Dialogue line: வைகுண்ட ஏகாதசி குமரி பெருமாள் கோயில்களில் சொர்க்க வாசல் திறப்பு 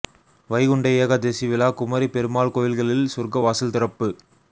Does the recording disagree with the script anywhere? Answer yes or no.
yes